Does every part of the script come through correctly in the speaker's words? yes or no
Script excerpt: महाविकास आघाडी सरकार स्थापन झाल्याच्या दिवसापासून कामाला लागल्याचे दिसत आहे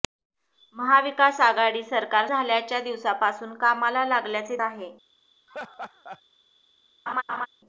no